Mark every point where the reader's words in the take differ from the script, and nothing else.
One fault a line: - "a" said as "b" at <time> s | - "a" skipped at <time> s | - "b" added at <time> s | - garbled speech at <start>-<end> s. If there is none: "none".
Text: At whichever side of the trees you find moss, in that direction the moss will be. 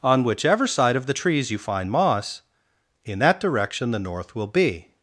- "At" said as "On" at 0.0 s
- "moss" said as "north" at 4.0 s